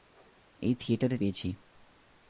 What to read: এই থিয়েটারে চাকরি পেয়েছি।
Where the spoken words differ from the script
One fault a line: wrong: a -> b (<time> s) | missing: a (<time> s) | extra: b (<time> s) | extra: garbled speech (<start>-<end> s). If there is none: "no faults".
missing: চাকরি (1.2 s)